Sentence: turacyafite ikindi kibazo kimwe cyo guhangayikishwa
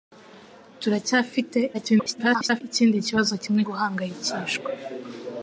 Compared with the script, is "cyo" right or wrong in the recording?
wrong